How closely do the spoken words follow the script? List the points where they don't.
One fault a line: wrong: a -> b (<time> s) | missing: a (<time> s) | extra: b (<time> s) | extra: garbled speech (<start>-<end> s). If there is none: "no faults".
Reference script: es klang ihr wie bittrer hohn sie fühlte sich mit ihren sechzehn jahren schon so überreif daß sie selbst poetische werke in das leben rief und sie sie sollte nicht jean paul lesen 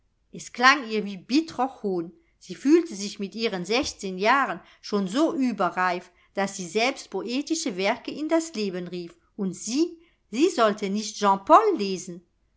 no faults